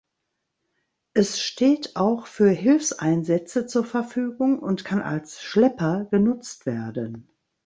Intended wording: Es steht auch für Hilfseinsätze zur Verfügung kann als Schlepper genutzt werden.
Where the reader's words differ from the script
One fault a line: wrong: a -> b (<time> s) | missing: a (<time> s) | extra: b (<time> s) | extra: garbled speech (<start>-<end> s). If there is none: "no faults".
extra: und (4.6 s)